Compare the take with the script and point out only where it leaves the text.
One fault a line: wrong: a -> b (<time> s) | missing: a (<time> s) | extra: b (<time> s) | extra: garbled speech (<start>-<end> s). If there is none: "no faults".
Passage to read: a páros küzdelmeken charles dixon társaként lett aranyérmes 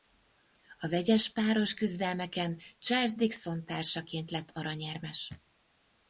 extra: vegyes (0.9 s)